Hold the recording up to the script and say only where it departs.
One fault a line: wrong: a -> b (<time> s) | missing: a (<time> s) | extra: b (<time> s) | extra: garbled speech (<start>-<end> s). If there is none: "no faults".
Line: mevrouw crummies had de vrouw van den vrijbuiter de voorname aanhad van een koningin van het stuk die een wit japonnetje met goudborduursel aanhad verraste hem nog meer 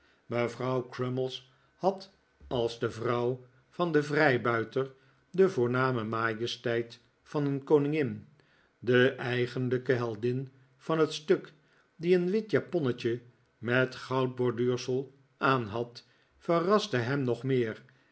extra: als (2.5 s)
wrong: aanhad -> majesteit (6.0 s)
extra: de eigenlijke heldin (8.8 s)